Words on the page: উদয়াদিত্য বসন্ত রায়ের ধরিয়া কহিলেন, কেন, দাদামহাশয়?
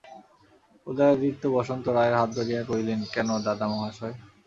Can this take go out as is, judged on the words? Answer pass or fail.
fail